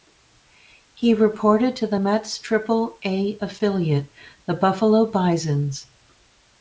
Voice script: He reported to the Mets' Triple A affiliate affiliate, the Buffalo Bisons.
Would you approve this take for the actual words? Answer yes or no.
no